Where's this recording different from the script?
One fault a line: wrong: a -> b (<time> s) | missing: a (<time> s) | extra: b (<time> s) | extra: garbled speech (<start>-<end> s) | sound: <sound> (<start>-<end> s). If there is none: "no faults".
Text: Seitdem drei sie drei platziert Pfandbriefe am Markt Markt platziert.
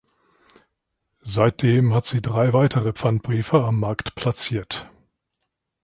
wrong: drei -> hat (1.9 s)
wrong: platziert -> weitere (2.5 s)
missing: Markt (4.1 s)